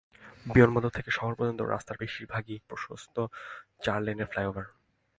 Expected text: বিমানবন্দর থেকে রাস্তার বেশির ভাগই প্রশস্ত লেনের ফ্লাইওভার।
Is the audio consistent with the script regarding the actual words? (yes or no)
no